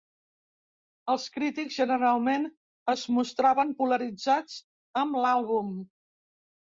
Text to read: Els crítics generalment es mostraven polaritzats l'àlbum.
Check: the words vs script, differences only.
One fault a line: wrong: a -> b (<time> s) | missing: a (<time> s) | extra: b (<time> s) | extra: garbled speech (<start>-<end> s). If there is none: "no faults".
extra: amb (5.0 s)